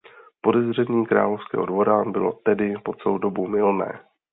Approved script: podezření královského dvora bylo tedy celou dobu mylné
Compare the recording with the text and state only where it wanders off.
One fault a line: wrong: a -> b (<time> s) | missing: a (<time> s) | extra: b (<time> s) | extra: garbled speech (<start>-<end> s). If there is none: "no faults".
extra: po (2.8 s)